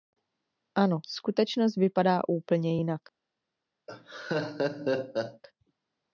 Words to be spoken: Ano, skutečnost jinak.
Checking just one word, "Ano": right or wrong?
right